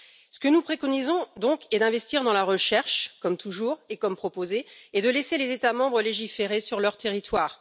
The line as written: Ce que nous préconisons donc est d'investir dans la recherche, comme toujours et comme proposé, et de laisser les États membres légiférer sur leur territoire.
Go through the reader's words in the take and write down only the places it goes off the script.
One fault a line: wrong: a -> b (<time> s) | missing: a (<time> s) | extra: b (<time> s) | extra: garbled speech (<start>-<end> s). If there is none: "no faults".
no faults